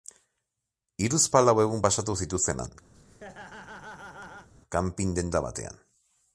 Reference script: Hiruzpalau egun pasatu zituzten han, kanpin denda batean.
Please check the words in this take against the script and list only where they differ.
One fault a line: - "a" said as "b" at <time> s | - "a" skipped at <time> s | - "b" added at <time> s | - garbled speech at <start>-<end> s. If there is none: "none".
none